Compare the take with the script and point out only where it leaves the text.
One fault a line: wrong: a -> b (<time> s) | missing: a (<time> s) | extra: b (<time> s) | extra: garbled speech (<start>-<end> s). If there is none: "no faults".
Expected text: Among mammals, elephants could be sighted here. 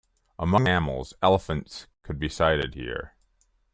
no faults